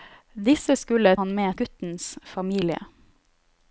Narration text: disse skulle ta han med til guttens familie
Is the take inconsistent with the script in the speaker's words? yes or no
yes